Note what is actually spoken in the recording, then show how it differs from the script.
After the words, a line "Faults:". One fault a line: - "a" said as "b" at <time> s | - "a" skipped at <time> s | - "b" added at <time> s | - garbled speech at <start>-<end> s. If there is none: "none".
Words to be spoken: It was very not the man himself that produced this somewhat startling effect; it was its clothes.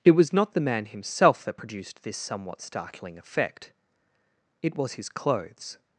It was not the man himself that produced this somewhat startling effect; it was his clothes.
Faults:
- "very" skipped at 0.3 s
- "its" said as "his" at 4.9 s